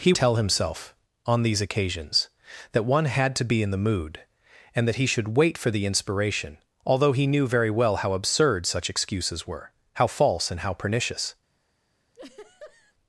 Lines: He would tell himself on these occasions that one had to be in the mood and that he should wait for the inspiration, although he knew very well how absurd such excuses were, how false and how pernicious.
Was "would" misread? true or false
true